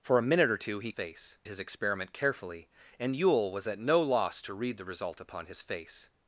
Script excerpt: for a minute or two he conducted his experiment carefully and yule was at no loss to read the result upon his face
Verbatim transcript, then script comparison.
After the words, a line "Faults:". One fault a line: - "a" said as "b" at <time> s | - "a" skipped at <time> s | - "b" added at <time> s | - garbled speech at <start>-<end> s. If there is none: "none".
for a minute or two he face his experiment carefully and yule was at no loss to read the result upon his face
Faults:
- "conducted" said as "face" at 0.9 s